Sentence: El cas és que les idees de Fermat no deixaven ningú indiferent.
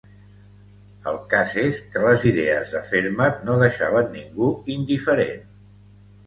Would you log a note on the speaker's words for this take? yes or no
no